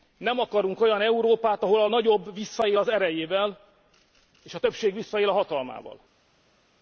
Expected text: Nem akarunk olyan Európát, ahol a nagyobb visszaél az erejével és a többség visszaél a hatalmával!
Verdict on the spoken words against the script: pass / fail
pass